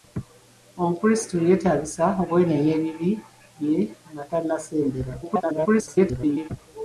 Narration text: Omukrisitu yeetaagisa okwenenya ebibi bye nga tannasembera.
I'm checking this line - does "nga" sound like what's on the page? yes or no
yes